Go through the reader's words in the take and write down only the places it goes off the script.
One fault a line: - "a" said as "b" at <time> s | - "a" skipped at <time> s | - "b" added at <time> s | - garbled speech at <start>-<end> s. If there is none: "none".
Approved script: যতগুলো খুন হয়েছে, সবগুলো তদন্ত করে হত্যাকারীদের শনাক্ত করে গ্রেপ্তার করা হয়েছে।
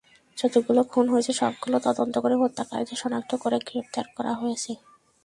none